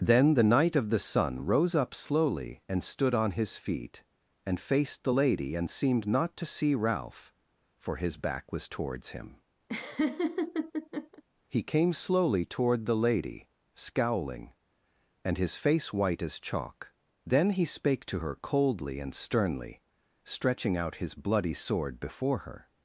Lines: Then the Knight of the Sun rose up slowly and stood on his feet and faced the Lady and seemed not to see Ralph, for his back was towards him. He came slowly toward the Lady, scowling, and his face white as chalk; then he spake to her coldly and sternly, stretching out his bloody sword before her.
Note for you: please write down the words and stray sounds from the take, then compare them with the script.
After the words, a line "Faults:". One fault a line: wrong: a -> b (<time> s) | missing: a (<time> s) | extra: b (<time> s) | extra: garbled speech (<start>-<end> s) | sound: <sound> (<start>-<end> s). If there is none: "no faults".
Then the Knight of the Sun rose up slowly and stood on his feet and faced the Lady and seemed not to see Ralph, for his back was towards him. He came slowly toward the Lady, scowling, and his face white as chalk; then he spake to her coldly and sternly, stretching out his bloody sword before her.
Faults:
sound: laugh (9.7-11.2 s)